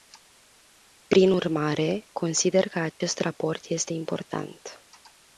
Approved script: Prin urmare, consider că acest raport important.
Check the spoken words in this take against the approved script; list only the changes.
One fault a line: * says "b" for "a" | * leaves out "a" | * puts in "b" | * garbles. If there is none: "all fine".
* puts in "este"